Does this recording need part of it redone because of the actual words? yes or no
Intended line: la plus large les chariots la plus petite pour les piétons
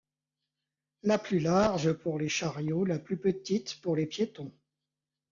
yes